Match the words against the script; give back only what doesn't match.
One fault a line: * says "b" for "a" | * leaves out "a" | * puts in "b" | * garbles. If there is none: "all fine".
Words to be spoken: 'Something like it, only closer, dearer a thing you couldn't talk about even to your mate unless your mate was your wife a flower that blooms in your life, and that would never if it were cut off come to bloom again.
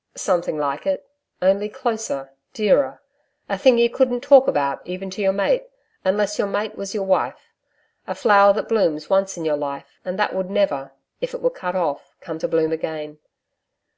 * puts in "once"